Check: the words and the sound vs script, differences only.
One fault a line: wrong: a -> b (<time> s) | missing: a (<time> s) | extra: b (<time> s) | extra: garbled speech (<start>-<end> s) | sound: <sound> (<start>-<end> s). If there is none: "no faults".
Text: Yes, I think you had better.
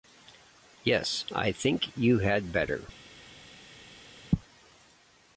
no faults